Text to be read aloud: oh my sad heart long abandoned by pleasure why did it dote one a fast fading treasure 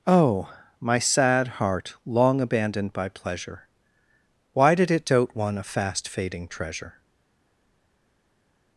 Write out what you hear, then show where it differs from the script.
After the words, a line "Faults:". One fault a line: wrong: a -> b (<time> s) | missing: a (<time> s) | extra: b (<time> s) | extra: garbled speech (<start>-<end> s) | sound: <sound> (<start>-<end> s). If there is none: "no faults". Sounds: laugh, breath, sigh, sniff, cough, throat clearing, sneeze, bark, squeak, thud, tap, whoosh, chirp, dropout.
oh my sad heart long abandoned by pleasure why did it dote one a fast fading treasure
Faults:
no faults